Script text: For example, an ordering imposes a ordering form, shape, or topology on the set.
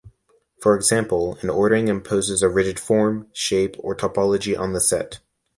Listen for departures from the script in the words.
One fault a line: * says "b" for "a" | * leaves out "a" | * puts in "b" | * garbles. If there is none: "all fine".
* says "rigid" for "ordering"